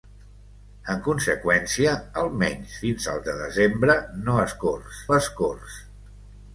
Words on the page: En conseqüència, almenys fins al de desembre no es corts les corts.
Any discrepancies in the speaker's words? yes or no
no